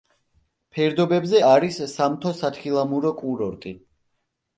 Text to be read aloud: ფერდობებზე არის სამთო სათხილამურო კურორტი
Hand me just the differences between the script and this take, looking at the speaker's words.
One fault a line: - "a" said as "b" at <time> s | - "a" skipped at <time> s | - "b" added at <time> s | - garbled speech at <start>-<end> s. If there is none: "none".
none